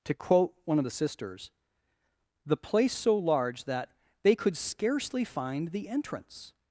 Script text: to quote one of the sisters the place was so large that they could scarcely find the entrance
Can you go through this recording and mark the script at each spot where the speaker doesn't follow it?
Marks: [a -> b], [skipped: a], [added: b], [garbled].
to quote one of the sisters the place [skipped: was] so large that they could scarcely find the entrance